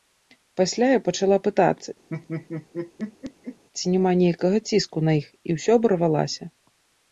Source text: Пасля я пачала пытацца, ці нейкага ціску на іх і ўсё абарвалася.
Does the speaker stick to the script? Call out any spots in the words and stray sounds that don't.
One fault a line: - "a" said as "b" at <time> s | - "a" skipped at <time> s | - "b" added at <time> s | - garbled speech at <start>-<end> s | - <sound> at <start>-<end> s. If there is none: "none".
- laugh at 2.1-3.6 s
- "няма" added at 3.9 s